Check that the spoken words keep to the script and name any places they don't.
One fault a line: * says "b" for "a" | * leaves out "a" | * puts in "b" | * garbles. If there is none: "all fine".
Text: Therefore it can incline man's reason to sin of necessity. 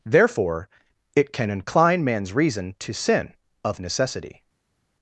all fine